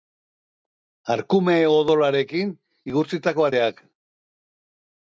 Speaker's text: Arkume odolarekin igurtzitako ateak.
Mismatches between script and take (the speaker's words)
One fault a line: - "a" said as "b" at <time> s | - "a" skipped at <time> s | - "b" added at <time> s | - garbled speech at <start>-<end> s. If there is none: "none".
none